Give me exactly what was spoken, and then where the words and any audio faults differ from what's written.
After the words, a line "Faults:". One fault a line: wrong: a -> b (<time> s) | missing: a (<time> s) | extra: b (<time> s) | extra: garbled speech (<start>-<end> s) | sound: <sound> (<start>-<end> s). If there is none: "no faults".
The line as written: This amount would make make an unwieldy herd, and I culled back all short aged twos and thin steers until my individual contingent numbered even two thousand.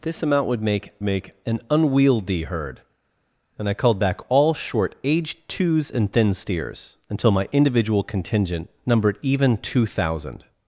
This amount would make make an unwieldy herd, and I culled back all short aged twos and thin steers until my individual contingent numbered even two thousand.
Faults:
no faults